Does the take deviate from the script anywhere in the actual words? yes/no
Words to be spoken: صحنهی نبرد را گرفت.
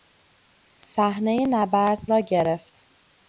no